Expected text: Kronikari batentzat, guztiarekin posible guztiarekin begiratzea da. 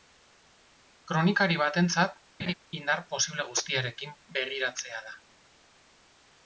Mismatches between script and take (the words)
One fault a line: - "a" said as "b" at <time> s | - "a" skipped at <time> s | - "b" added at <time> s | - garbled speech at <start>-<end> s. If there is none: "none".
- "guztiarekin" said as "indar" at 2.8 s